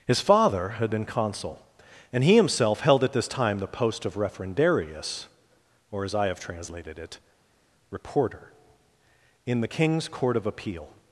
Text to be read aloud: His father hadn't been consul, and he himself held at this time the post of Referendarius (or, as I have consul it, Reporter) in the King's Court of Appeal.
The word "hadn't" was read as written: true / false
false